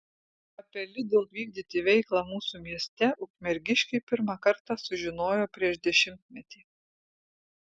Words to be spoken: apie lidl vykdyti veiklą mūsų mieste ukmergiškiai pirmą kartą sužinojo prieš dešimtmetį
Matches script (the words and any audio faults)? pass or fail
pass